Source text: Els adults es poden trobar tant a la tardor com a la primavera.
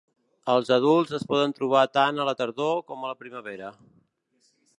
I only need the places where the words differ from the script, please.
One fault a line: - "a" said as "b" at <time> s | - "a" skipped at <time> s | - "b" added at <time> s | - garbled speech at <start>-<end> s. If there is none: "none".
none